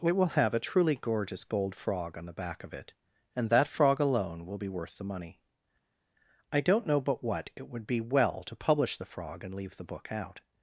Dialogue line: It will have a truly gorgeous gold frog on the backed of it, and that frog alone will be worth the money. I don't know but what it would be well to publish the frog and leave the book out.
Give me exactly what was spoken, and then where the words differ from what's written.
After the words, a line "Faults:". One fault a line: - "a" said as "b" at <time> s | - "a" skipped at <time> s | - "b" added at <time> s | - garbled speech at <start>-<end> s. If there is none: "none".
It will have a truly gorgeous gold frog on the back of it, and that frog alone will be worth the money. I don't know but what it would be well to publish the frog and leave the book out.
Faults:
- "backed" said as "back" at 2.3 s